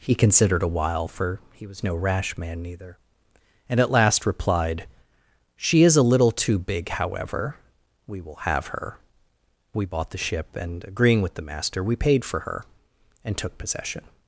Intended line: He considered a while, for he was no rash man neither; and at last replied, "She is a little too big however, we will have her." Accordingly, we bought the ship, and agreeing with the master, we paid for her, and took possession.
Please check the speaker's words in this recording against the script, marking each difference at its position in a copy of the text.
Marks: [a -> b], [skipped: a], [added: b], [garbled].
He considered a while, for he was no rash man neither; and at last replied, "She is a little too big however, we will have her." [skipped: Accordingly,] we bought the ship, and agreeing with the master, we paid for her, and took possession.